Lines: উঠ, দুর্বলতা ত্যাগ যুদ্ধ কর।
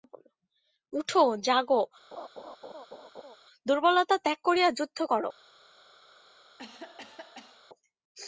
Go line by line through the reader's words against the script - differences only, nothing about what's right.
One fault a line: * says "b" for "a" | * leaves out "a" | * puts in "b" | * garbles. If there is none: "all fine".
* puts in "জাগো"
* puts in "করিয়া"